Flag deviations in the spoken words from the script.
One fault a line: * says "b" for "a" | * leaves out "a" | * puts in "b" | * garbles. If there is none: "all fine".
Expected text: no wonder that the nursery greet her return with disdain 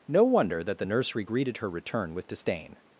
* says "greeted" for "greet"